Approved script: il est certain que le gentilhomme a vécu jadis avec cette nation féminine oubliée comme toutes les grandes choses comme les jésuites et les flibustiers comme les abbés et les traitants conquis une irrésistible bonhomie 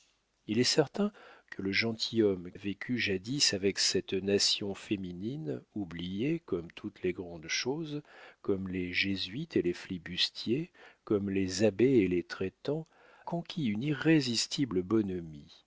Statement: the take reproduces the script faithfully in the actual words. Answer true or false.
true